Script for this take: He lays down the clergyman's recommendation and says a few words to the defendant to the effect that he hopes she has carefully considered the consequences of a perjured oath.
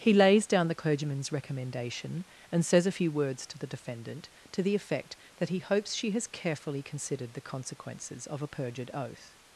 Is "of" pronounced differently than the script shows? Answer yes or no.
no